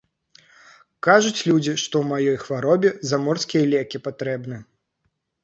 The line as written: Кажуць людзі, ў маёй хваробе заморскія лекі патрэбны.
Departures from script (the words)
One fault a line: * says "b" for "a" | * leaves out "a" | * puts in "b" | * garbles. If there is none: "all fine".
* puts in "што"